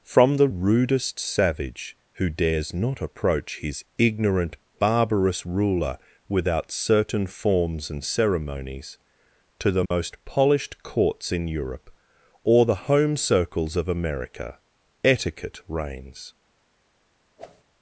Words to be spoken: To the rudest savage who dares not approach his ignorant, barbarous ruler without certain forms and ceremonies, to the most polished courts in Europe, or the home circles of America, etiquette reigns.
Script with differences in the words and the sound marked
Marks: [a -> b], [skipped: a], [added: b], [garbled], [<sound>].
[To -> From] the rudest savage who dares not approach his ignorant, barbarous ruler without certain forms and ceremonies, to the most [dropout] polished courts in Europe, or the home circles of America, etiquette reigns. [whoosh]